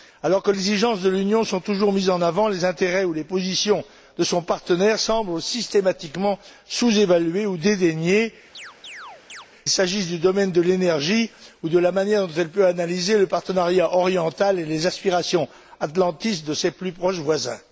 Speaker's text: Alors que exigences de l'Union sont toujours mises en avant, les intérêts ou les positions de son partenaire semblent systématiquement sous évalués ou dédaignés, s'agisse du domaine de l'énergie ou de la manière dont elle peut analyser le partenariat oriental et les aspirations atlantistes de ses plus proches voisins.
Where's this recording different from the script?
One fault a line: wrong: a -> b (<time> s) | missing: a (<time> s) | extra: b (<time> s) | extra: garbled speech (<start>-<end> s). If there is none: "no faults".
no faults